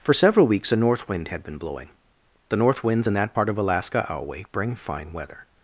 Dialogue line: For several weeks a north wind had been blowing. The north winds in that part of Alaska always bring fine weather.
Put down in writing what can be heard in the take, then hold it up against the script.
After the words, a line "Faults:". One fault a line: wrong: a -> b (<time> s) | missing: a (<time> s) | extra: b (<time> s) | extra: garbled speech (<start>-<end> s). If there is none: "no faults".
For several weeks a north wind had been blowing. The north winds in that part of Alaska alway bring fine weather.
Faults:
wrong: always -> alway (4.1 s)